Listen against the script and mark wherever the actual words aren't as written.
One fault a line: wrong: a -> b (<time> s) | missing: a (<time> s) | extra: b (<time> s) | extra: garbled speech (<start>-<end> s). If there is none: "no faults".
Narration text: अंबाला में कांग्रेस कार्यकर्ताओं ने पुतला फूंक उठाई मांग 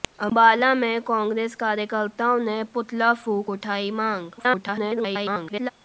extra: garbled speech (4.4-5.7 s)